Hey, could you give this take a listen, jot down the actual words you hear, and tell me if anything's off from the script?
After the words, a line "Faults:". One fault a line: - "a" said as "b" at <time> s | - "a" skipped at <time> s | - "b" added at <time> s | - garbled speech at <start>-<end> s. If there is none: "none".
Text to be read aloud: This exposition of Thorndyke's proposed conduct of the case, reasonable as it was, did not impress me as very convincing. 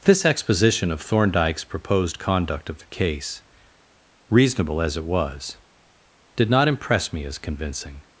This exposition of Thorndyke's proposed conduct of the case, reasonable as it was, did not impress me as convincing.
Faults:
- "very" skipped at 7.4 s